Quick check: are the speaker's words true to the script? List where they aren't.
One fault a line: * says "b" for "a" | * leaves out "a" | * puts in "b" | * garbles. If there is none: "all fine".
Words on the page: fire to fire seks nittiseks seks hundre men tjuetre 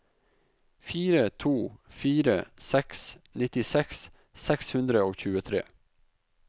* says "og" for "men"